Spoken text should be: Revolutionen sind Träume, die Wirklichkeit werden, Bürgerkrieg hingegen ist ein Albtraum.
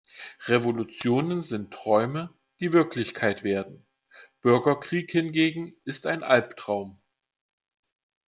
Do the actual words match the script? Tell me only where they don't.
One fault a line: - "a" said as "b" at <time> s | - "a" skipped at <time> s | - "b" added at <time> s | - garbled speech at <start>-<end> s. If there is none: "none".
none